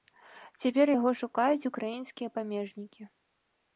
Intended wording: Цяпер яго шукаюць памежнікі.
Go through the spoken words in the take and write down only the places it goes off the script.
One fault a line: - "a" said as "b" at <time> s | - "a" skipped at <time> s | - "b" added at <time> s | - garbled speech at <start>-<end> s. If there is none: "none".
- "украінскія" added at 1.7 s